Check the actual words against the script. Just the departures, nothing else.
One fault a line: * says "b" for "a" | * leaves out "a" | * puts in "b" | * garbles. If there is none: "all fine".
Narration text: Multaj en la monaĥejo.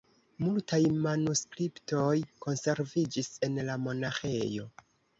* puts in "manuskriptoj konserviĝis"